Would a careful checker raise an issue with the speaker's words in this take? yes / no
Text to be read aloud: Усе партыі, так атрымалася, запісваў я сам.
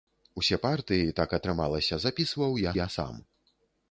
yes